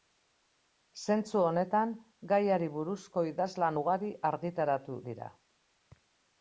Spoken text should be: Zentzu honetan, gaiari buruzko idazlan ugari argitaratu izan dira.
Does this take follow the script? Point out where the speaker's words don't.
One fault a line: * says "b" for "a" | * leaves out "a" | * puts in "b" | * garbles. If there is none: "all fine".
* leaves out "izan"